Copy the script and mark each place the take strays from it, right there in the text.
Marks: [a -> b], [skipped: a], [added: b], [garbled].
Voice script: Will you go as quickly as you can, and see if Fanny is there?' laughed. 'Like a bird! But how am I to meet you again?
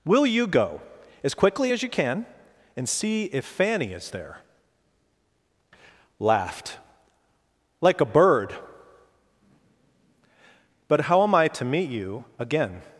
Will you go as quickly as you can, and see if Fanny is there?' laughed. 'Like a bird! But how am I to meet you again?